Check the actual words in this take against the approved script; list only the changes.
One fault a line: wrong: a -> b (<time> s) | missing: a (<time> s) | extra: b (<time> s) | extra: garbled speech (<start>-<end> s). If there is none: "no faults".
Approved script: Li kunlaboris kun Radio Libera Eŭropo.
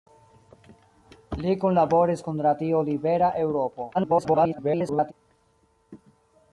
extra: garbled speech (3.9-5.1 s)